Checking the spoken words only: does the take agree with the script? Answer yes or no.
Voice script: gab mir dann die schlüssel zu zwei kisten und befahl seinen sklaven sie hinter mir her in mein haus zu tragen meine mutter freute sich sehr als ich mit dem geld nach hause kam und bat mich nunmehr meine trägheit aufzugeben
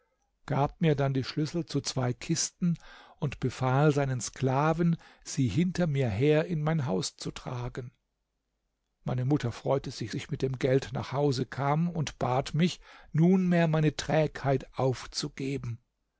no